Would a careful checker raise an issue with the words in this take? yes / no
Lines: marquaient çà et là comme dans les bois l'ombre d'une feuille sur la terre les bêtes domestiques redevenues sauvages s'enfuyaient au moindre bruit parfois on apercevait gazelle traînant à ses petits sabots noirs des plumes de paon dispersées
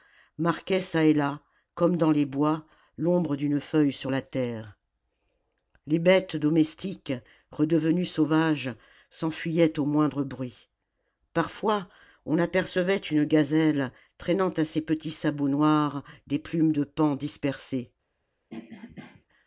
yes